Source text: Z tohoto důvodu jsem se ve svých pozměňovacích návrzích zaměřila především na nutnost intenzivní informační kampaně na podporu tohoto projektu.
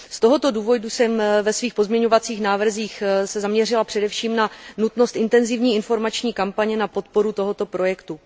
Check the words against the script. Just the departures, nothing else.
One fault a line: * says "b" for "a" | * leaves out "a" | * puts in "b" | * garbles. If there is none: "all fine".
all fine